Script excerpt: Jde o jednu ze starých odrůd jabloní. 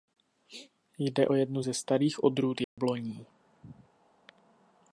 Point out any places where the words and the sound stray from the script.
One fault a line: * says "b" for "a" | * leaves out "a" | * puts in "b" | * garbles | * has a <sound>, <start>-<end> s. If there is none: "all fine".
* has a dropout, 2.6-2.8 s